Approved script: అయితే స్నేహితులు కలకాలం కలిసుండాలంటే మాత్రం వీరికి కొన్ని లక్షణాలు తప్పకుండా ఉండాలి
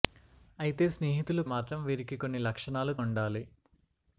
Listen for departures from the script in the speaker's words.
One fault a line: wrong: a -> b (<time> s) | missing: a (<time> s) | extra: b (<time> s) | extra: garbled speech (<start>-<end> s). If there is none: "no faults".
missing: కలకాలం కలిసుండాలంటే (1.4 s)
missing: తప్పకుండా (3.0 s)